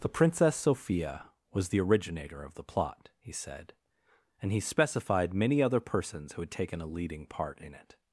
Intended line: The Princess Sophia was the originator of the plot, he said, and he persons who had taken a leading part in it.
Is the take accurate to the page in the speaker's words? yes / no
no